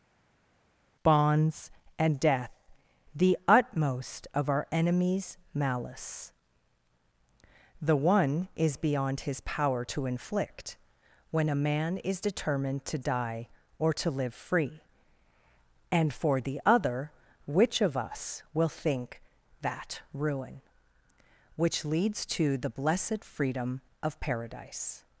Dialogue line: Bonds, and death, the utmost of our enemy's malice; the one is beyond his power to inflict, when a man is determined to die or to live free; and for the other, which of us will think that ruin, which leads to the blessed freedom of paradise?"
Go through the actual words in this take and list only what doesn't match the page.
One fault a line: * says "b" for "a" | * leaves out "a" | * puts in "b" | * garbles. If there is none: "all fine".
all fine